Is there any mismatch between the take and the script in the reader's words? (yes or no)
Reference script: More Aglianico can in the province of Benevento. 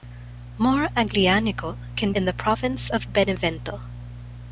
no